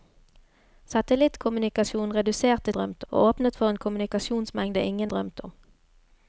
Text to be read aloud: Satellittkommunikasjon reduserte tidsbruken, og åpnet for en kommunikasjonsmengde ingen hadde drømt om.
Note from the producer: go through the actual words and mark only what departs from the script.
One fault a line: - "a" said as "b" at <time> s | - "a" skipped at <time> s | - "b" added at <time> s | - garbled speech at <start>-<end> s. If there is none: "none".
- "tidsbruken" said as "drømt" at 2.7 s
- "hadde" skipped at 5.1 s